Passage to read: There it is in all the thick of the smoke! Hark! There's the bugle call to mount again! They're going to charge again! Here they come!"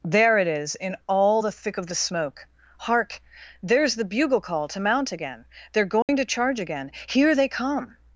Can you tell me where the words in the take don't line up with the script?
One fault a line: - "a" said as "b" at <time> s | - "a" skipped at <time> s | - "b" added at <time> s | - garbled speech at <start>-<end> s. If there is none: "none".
none